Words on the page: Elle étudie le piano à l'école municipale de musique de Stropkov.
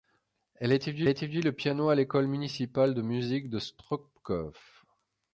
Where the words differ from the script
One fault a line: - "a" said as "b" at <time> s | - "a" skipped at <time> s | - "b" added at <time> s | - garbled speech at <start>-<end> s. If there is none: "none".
- "étudie" added at 1.1 s